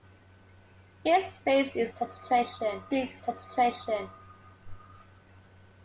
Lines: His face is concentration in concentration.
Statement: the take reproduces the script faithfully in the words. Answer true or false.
true